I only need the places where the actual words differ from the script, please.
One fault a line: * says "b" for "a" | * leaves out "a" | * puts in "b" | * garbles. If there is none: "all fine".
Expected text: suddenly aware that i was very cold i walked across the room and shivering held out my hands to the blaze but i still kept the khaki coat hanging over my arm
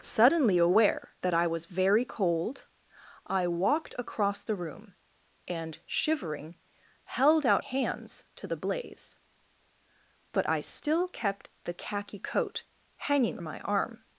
* leaves out "my"
* leaves out "over"